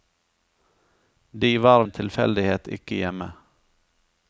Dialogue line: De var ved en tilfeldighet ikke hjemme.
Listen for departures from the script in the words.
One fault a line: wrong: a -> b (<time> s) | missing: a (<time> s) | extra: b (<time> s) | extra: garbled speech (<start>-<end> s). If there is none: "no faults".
missing: ved (1.8 s)